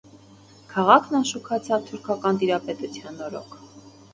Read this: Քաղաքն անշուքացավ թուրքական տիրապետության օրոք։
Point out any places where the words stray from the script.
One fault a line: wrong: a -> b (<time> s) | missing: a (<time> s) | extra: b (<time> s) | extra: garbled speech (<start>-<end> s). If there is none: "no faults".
no faults